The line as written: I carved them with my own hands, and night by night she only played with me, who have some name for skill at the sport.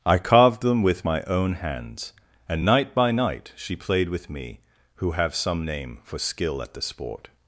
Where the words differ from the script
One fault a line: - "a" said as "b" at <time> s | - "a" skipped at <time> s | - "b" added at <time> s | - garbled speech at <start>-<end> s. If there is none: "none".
- "only" skipped at 3.7 s